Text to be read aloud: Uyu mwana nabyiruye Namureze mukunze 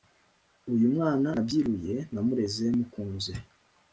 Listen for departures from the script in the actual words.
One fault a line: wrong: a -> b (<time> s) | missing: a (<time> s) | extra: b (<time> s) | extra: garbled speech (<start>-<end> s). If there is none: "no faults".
no faults